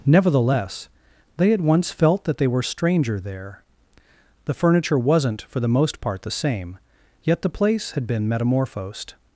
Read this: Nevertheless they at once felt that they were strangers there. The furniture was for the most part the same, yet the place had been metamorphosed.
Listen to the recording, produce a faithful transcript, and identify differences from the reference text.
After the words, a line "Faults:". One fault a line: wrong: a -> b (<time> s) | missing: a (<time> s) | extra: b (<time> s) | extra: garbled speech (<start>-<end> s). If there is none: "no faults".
Nevertheless they at once felt that they were stranger there. The furniture wasn't for the most part the same, yet the place had been metamorphosed.
Faults:
wrong: strangers -> stranger (2.6 s)
wrong: was -> wasn't (5.0 s)